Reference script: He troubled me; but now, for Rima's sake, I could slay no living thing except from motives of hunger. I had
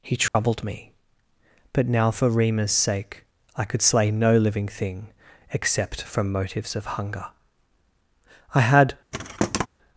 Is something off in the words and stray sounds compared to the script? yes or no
yes